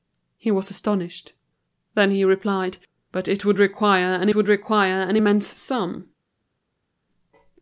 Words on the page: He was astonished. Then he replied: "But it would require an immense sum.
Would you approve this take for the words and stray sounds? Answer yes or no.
no